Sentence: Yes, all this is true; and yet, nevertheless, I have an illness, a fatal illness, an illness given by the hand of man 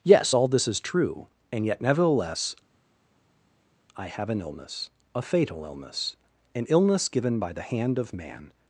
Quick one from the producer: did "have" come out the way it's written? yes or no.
yes